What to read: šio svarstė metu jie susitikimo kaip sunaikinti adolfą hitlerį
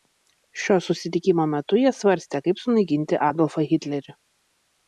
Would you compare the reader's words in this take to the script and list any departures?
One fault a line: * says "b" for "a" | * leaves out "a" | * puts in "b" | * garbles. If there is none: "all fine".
* says "susitikimo" for "svarstė"
* says "svarstė" for "susitikimo"